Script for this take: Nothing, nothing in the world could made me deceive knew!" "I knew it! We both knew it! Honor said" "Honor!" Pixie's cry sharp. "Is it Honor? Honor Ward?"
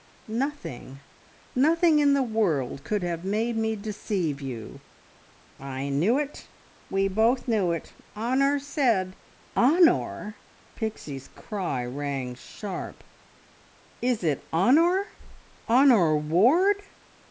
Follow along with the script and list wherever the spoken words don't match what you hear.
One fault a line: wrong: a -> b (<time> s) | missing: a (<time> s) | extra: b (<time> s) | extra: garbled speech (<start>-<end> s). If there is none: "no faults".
extra: have (3.0 s)
wrong: knew -> you (4.4 s)
extra: rang (11.8 s)